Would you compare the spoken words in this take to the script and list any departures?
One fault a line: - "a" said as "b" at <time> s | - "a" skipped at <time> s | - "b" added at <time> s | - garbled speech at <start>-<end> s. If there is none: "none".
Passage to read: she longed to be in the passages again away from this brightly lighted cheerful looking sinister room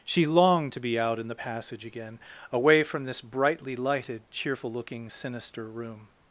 - "out" added at 1.0 s
- "passages" said as "passage" at 1.3 s